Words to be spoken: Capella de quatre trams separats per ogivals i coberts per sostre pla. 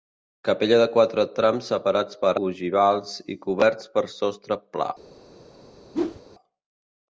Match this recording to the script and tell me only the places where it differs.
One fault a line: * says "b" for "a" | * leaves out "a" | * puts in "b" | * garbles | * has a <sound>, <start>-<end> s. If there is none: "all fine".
* has a whoosh, 5.9-6.2 s